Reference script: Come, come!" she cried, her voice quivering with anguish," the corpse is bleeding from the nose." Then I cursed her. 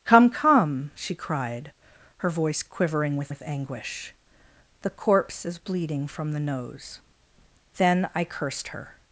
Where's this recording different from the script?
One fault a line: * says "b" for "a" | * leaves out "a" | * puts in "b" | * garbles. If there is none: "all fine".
* puts in "with"